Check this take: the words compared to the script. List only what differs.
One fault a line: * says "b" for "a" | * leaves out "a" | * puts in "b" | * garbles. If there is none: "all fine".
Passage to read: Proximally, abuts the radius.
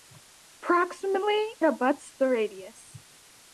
all fine